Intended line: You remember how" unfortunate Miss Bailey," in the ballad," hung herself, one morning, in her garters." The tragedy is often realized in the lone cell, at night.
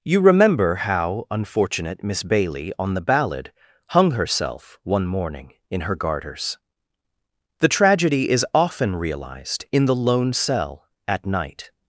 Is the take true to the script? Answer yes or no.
no